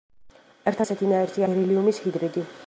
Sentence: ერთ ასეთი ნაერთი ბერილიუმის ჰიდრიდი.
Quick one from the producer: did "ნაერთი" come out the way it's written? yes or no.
yes